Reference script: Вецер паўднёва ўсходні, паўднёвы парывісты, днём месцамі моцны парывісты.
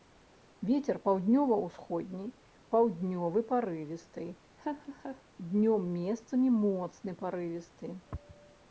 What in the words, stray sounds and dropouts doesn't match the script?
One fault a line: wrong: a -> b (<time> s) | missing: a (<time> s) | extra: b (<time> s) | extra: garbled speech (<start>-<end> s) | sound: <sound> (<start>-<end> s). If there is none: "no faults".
sound: laugh (4.6-5.2 s)